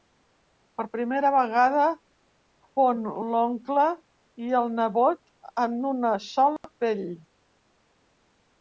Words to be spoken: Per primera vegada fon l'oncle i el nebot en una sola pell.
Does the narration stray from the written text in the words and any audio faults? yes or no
yes